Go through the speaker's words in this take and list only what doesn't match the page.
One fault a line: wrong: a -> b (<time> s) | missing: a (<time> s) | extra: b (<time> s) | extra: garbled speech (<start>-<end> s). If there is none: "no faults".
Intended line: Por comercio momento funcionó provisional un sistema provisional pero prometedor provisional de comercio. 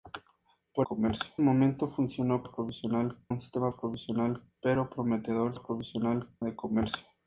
no faults